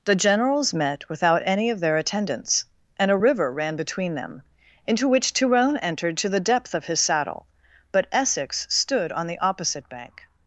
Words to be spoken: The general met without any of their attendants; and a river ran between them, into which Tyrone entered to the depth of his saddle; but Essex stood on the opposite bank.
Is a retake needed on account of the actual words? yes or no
yes